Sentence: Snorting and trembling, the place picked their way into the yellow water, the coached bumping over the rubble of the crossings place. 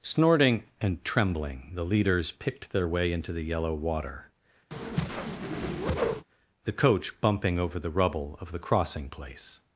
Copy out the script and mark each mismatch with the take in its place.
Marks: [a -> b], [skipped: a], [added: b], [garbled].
Snorting and trembling, the [place -> leaders] picked their way into the yellow water, the [coached -> coach] bumping over the rubble of the [crossings -> crossing] place.